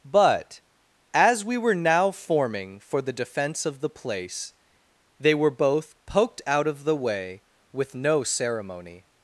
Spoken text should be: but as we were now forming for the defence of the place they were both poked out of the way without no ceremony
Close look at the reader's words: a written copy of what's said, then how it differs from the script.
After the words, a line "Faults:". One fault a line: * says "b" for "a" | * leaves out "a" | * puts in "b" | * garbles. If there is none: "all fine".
but as we were now forming for the defence of the place they were both poked out of the way with no ceremony
Faults:
* says "with" for "without"